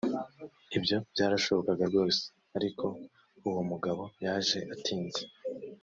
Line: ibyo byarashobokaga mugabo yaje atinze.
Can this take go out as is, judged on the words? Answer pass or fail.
fail